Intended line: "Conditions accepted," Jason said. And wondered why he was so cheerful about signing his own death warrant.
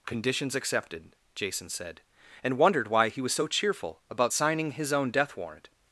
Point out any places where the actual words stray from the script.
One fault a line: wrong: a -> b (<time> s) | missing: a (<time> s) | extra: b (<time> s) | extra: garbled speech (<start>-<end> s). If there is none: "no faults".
no faults